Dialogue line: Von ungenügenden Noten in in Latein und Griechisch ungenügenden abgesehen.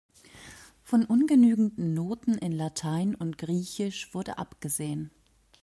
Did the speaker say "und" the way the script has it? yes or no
yes